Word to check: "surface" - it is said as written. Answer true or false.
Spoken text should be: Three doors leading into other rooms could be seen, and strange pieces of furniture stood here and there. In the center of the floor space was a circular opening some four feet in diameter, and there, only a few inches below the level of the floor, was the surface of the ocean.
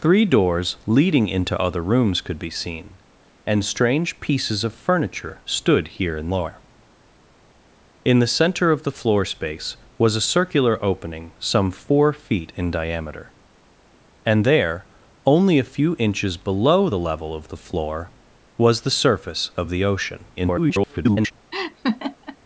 true